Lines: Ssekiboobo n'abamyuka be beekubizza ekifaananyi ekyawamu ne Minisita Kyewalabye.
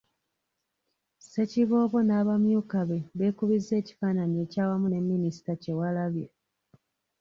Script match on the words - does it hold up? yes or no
yes